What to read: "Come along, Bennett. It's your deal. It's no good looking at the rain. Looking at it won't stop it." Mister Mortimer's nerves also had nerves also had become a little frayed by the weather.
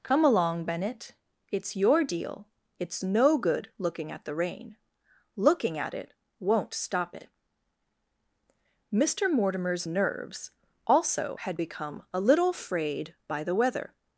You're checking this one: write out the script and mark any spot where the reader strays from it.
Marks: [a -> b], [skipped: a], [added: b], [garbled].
"Come along, Bennett. It's your deal. It's no good looking at the rain. Looking at it won't stop it." Mister Mortimer's nerves also had [skipped: nerves also had] become a little frayed by the weather.